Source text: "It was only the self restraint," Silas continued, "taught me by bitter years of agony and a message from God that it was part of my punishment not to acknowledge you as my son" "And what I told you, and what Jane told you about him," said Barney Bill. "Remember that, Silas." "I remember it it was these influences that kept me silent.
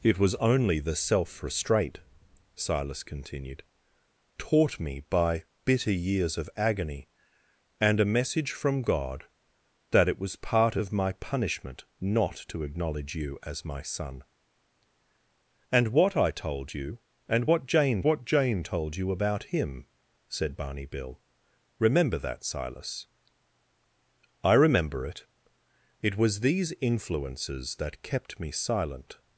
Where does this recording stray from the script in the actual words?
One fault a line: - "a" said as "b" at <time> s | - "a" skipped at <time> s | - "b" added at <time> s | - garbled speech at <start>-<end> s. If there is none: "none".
- "what Jane" added at 18.0 s